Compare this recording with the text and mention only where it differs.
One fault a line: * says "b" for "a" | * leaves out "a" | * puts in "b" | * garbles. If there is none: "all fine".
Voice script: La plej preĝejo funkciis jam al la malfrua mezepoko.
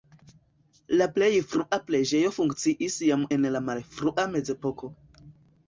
* puts in "frua"
* says "en" for "al"